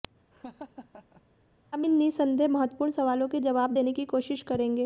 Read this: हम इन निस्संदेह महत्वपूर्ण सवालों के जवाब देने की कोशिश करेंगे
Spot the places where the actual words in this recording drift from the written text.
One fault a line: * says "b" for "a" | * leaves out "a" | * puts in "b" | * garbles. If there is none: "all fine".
all fine